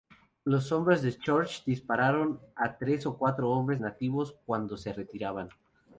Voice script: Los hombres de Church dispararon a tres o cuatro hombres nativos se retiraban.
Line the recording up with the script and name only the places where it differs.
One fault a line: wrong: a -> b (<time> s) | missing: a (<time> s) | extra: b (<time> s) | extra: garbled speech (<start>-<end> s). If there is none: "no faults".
extra: cuando (4.5 s)